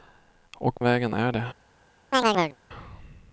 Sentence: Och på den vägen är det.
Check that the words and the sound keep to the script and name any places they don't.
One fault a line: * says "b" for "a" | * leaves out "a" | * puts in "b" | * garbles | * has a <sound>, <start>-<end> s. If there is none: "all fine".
* leaves out "på den"
* has a chirp, 2.1-2.6 s